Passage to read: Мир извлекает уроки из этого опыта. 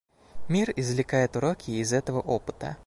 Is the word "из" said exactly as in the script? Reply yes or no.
yes